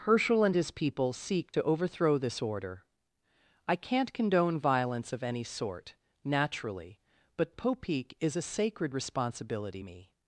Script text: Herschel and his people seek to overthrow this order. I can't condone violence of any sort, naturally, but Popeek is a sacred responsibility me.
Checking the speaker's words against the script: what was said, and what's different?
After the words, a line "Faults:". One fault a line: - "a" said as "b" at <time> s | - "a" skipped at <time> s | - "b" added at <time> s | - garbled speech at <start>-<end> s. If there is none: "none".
Herschel and his people seek to overthrow this order. I can't condone violence of any sort, naturally, but Popeek is a sacred responsibility me.
Faults:
none